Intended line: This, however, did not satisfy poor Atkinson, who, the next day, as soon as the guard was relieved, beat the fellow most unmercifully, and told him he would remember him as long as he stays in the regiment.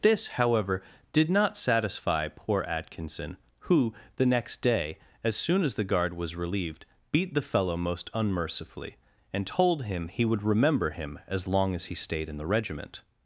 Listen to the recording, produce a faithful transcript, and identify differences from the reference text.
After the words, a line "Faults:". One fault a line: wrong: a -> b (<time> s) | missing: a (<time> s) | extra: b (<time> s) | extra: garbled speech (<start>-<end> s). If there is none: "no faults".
This, however, did not satisfy poor Atkinson, who, the next day, as soon as the guard was relieved, beat the fellow most unmercifully, and told him he would remember him as long as he stayed in the regiment.
Faults:
wrong: stays -> stayed (11.9 s)